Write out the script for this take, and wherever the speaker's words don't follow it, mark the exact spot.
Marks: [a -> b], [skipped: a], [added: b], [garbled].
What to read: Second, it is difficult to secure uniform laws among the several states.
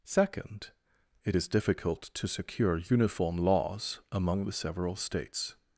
Second, it is difficult to secure uniform laws among the several states.